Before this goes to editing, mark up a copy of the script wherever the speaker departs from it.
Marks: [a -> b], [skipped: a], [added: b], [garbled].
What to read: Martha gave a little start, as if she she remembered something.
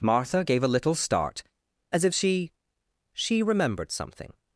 Martha gave a little start, as if she she remembered something.